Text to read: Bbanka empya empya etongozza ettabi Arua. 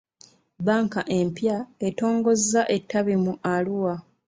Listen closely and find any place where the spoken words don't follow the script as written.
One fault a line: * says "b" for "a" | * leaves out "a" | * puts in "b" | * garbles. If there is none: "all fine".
* leaves out "empya"
* puts in "mu"